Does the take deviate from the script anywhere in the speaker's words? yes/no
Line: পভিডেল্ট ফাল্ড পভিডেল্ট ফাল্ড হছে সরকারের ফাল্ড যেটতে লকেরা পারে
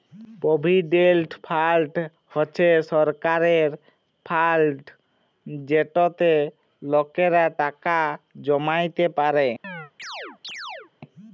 yes